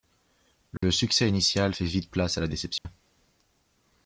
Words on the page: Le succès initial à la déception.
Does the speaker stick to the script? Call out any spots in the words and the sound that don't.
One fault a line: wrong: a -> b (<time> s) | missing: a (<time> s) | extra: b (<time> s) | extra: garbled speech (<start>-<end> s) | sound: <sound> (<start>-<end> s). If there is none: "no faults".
sound: dropout (0.8-0.8 s)
extra: fait vite place (1.7 s)
sound: dropout (2.8-2.9 s)